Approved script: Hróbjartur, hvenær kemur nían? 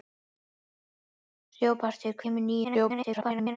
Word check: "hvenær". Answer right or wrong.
wrong